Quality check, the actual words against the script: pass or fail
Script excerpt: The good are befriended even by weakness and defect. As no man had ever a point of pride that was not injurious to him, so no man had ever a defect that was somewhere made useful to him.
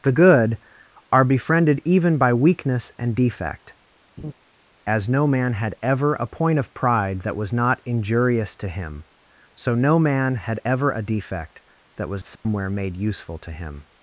pass